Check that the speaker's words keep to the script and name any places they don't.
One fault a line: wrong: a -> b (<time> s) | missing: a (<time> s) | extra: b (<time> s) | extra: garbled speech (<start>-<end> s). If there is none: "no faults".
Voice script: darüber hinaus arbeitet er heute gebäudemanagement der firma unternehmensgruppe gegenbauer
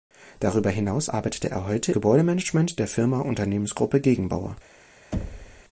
no faults